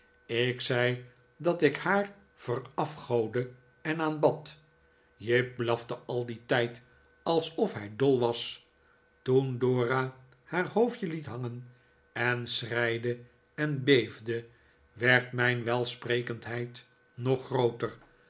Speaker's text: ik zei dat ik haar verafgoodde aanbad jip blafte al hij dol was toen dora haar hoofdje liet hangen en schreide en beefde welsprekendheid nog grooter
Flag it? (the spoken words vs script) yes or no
yes